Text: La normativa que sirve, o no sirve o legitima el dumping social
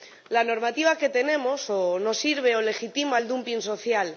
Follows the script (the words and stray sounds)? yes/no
no